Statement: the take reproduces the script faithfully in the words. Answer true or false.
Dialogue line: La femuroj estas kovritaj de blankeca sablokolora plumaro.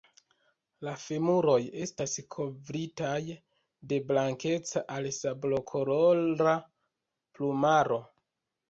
false